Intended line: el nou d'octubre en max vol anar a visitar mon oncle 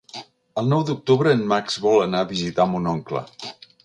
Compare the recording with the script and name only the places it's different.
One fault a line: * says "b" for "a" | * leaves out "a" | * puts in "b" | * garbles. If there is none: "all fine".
all fine